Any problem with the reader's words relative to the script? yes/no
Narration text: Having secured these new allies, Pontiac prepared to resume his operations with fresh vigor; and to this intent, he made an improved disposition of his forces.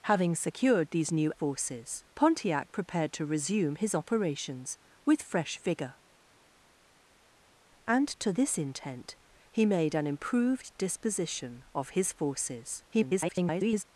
yes